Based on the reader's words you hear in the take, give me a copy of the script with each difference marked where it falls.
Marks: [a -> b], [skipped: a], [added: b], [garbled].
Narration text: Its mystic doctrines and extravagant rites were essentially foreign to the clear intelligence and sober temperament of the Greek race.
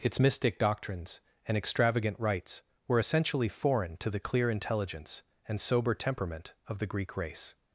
Its mystic doctrines and extravagant rites were essentially foreign to the clear intelligence and sober temperament of the Greek race.